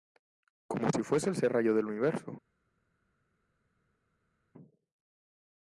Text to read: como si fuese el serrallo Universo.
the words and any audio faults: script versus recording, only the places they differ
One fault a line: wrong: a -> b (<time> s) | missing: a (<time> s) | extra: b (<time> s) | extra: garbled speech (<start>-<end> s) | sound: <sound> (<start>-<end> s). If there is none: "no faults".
extra: del (1.7 s)